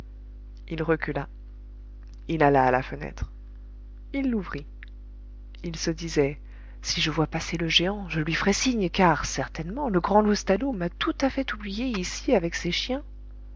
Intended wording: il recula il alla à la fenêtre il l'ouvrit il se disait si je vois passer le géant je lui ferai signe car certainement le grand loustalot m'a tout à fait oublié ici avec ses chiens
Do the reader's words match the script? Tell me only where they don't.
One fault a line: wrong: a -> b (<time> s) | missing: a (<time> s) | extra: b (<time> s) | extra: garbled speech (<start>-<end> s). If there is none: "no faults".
no faults